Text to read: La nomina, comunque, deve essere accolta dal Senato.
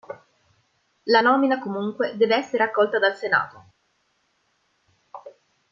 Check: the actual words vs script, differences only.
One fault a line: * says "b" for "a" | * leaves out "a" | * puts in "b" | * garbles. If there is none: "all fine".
all fine